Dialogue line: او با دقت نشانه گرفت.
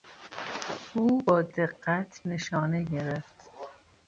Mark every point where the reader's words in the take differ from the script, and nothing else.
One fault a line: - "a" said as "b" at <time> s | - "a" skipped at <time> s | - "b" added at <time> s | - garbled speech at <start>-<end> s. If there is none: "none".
none